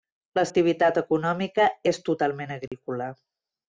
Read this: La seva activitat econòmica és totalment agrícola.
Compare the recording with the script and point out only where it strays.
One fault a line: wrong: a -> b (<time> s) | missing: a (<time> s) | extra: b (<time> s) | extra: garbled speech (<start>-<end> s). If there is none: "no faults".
missing: seva (0.4 s)